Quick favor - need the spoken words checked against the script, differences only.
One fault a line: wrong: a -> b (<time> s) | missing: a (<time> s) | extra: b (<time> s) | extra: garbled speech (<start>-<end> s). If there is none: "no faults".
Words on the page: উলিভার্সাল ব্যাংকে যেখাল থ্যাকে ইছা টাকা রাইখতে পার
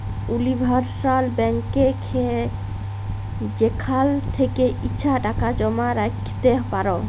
extra: জমা (5.5 s)